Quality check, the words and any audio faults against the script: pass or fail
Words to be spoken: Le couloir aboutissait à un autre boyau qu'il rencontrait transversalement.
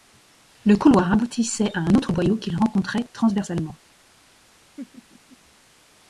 fail